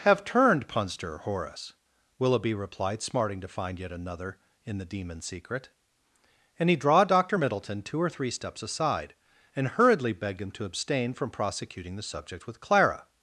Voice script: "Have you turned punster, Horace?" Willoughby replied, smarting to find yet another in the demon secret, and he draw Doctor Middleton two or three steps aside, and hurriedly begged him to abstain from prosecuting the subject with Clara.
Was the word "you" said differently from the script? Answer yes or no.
yes